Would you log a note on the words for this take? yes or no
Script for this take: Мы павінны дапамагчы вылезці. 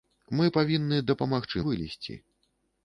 no